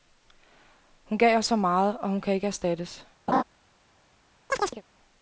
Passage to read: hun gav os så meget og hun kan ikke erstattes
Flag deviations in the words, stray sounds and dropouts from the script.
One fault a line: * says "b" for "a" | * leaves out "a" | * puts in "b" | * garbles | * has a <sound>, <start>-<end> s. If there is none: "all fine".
* has a laugh, 3.3-3.4 s
* has a chirp, 4.5-4.8 s